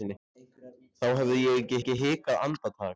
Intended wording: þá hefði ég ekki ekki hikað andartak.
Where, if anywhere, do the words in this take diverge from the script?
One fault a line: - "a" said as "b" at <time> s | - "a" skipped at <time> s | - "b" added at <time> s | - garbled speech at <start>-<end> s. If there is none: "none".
none